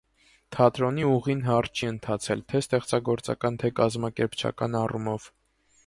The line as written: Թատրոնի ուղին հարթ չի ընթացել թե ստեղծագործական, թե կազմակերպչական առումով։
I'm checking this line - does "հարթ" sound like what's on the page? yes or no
yes